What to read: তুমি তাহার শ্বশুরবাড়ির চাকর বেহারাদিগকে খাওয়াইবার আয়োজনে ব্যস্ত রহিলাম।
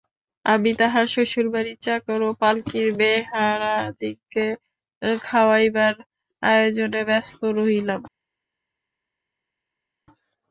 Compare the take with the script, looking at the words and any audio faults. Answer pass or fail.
fail